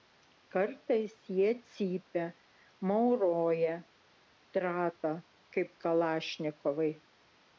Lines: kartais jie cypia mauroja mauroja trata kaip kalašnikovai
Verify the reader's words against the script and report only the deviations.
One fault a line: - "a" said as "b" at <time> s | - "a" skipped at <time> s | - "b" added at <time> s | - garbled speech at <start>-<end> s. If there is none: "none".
- "mauroja" skipped at 3.8 s